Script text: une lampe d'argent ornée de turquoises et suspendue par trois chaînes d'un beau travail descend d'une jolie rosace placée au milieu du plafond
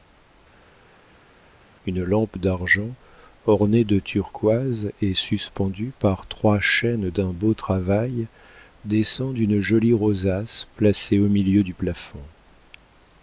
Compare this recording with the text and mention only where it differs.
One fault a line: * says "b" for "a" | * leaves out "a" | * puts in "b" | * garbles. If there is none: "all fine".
all fine